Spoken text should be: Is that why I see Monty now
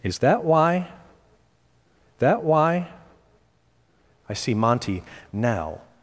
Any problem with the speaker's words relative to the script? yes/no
yes